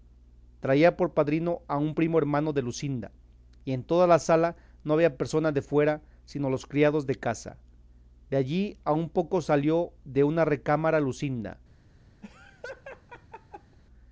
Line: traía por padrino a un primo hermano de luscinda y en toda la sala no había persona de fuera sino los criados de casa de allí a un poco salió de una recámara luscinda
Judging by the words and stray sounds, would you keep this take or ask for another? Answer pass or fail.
fail